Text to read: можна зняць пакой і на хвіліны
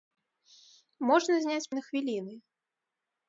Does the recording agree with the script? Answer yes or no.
no